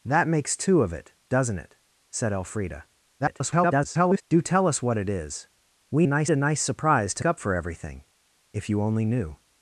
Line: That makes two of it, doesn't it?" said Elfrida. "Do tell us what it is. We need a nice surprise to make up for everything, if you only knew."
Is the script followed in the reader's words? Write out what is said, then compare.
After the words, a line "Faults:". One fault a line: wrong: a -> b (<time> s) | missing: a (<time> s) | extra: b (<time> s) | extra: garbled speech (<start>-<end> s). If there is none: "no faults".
That makes two of it, doesn't it?" said Elfrida. [garbled] "Do tell us what it is. We nice a nice surprise to up for everything, if you only knew."
Faults:
extra: garbled speech (3.2-4.2 s)
wrong: need -> nice (6.1 s)
missing: make (7.2 s)